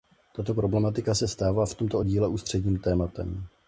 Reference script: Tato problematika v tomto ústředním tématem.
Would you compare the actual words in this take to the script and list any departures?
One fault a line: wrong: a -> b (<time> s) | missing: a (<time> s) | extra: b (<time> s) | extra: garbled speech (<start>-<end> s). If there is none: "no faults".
extra: se stává (1.1 s)
extra: díle (2.0 s)